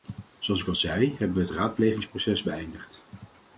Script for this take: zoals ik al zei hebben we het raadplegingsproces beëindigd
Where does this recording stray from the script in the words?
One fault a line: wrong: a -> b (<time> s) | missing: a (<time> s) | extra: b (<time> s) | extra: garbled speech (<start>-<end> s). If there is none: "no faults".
no faults